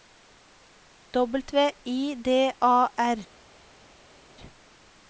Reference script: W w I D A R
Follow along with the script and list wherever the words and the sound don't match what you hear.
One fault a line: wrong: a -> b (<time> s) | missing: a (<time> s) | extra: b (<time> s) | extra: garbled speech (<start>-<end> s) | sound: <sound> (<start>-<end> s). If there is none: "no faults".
missing: w (1.4 s)